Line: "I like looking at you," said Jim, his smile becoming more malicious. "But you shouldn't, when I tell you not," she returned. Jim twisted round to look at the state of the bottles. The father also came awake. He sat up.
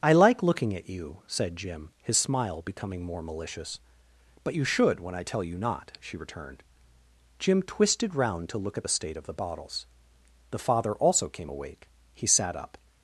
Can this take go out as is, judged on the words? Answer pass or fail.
fail